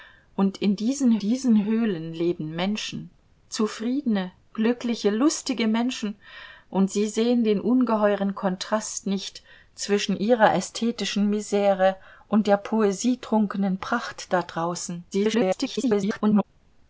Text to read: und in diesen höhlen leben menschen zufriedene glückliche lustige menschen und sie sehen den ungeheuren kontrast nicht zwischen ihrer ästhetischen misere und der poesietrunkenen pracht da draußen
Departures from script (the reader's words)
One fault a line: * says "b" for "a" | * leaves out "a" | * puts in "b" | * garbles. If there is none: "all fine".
* puts in "diesen"
* garbles